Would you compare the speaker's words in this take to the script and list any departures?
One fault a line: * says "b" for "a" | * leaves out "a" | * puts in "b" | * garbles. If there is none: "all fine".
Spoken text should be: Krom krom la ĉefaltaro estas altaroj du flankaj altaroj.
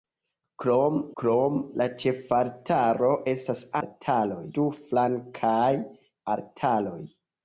all fine